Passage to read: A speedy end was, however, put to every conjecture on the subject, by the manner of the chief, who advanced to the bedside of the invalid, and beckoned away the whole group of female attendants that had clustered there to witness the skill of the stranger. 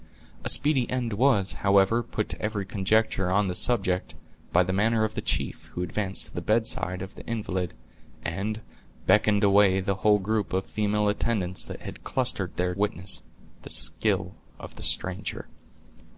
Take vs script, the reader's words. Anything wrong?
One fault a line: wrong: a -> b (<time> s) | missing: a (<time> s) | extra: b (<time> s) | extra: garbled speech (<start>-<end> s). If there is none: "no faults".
missing: to (12.7 s)